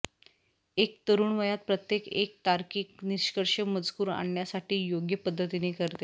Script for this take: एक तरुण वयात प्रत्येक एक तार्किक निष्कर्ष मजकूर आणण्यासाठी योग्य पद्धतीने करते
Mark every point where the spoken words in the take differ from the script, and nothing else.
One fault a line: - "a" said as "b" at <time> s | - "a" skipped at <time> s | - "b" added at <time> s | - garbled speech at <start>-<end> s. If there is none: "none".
none